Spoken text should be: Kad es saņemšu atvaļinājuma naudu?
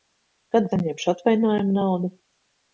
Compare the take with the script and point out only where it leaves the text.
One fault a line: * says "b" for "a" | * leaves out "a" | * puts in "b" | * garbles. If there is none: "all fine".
* leaves out "es"